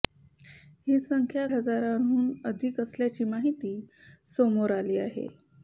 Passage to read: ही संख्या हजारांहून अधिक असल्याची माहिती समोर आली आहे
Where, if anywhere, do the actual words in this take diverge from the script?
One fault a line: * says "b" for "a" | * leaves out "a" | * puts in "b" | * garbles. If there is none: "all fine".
all fine